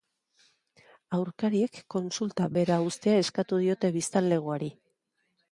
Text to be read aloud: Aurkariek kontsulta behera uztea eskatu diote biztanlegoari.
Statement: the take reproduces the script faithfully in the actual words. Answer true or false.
true